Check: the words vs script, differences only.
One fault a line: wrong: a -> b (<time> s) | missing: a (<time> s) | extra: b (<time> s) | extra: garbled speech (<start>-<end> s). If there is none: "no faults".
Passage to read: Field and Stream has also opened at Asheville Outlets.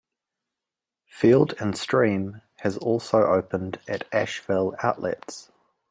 no faults